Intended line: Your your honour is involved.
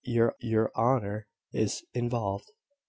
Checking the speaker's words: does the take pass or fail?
pass